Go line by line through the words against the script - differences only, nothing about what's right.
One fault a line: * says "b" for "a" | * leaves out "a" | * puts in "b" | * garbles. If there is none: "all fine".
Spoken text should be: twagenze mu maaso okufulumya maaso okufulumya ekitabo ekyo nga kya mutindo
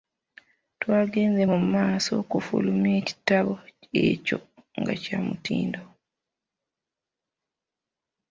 * leaves out "maaso okufulumya"